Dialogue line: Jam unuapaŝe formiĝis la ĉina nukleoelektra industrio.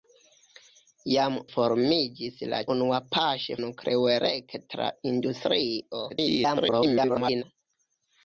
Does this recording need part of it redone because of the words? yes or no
yes